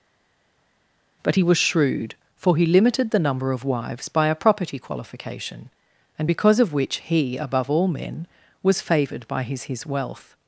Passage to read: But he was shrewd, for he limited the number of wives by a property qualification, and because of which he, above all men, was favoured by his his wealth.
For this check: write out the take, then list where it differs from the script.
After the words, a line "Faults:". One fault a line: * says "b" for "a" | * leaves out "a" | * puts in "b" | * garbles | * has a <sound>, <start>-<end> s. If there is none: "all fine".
But he was shrewd, for he limited the number of wives by a property qualification, and because of which he, above all men, was favoured by his his wealth.
Faults:
all fine